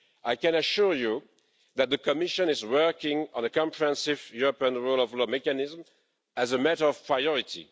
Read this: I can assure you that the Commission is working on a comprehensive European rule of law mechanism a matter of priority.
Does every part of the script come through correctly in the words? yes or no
no